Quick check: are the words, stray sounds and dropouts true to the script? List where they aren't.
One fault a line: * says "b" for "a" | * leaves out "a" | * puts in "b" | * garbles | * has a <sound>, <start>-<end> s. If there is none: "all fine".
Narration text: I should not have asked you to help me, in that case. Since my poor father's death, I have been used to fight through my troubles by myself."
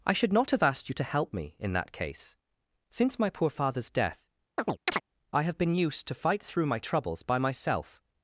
* has a chirp, 4.6-5.0 s